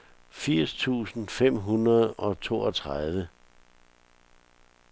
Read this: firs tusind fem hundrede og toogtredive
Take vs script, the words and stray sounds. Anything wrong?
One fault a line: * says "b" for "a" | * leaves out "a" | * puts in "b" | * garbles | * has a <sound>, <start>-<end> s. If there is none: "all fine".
all fine